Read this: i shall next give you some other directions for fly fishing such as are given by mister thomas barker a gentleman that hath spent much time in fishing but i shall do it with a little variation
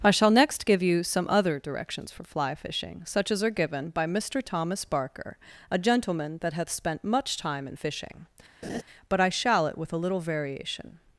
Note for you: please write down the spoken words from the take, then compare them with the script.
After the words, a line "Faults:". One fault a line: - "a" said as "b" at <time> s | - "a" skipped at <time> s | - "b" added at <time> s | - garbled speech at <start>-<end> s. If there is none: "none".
i shall next give you some other directions for fly fishing such as are given by mister thomas barker a gentleman that hath spent much time in fishing but i shall it with a little variation
Faults:
- "do" skipped at 9.7 s